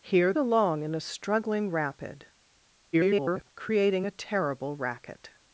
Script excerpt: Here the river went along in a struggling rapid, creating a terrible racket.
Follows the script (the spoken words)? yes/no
no